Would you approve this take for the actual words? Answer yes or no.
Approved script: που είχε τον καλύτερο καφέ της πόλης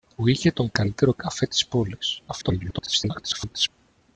no